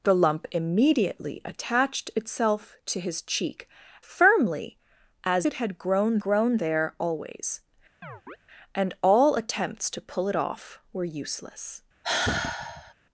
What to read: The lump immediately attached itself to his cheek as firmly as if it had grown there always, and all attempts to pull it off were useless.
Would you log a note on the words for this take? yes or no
yes